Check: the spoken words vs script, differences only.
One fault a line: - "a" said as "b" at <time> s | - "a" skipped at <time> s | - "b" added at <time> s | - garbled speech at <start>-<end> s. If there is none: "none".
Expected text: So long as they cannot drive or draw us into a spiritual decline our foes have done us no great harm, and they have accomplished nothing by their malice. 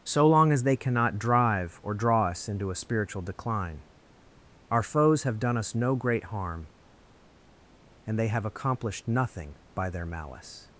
none